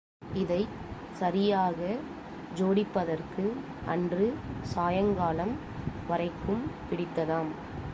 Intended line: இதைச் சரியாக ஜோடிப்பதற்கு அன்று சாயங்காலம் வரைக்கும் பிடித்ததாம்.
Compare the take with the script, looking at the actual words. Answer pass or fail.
pass